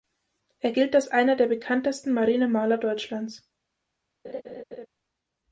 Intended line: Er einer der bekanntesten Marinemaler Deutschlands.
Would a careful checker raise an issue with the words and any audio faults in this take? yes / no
yes